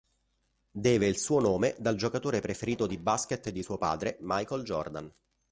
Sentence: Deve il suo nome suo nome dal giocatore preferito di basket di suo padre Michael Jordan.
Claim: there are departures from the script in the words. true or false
true